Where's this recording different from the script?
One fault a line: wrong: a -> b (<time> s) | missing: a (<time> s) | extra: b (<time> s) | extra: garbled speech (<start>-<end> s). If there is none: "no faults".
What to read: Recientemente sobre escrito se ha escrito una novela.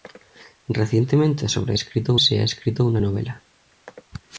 no faults